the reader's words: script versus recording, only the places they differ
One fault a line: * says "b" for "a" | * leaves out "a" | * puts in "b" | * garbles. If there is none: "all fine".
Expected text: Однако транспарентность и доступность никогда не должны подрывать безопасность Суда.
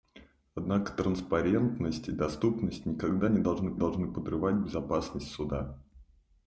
* puts in "должны"